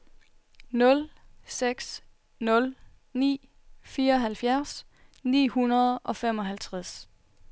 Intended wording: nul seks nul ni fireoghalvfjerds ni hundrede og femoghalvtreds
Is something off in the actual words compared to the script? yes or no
no